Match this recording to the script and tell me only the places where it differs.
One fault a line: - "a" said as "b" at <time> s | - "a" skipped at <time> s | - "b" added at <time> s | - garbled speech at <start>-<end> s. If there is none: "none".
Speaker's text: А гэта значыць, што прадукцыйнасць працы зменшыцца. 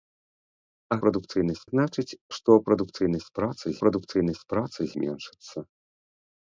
- "гэта" said as "прадукцыйнасць" at 1.0 s
- "прадукцыйнасць працы" added at 3.8 s